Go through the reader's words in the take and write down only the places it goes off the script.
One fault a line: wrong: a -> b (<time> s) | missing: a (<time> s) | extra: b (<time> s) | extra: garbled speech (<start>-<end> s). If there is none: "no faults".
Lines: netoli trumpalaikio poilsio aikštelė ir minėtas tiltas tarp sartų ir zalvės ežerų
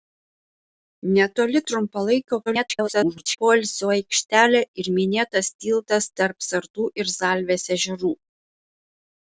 extra: garbled speech (2.5-3.4 s)